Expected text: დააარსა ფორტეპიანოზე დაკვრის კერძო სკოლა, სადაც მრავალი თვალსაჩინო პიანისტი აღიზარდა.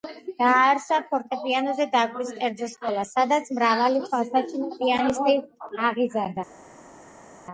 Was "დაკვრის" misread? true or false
false